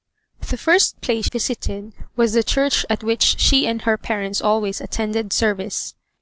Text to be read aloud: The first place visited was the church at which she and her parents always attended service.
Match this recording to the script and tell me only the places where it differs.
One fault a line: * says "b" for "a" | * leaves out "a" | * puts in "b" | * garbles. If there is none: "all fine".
all fine